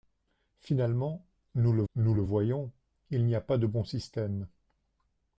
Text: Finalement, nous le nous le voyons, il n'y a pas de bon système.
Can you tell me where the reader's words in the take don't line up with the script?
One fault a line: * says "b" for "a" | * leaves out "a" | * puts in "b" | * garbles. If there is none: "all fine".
all fine